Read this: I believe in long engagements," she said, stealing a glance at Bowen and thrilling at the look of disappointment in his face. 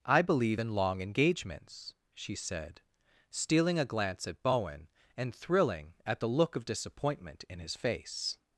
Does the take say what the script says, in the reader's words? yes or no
yes